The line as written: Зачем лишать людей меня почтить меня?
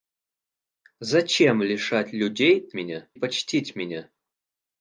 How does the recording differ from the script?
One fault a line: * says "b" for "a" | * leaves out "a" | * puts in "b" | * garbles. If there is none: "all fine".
all fine